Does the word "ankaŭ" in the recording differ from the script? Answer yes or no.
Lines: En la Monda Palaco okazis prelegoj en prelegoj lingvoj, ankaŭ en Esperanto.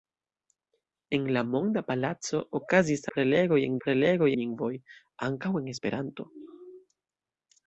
no